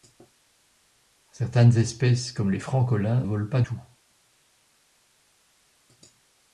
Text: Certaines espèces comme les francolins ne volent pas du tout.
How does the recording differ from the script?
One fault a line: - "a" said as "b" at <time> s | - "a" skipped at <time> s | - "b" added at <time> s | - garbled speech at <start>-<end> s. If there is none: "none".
- "ne" skipped at 3.2 s
- "du" skipped at 3.6 s